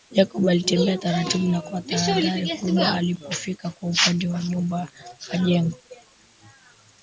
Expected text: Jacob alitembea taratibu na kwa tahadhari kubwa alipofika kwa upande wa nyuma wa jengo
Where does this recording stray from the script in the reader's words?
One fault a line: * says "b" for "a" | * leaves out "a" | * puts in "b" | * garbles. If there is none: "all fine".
all fine